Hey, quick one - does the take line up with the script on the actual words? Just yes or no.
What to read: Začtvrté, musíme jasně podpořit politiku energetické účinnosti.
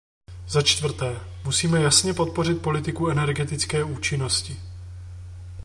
yes